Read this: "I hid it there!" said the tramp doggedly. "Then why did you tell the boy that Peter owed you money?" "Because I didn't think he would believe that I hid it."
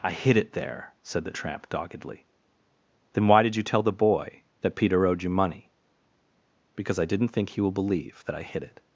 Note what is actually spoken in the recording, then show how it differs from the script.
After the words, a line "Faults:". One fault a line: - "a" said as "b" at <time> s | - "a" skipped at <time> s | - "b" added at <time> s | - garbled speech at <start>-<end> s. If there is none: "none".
"I hid it there!" said the tramp doggedly. "Then why did you tell the boy that Peter owed you money?" "Because I didn't think he will believe that I hid it."
Faults:
- "would" said as "will" at 7.6 s